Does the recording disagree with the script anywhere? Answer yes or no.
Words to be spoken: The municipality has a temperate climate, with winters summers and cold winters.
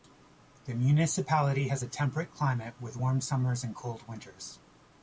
yes